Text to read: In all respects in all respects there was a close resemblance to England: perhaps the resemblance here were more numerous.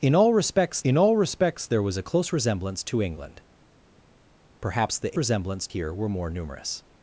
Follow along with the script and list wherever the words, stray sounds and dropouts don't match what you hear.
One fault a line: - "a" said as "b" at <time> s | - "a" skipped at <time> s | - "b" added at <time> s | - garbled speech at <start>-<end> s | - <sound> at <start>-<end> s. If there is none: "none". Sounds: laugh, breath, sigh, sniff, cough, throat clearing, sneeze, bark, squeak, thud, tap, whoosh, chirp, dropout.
none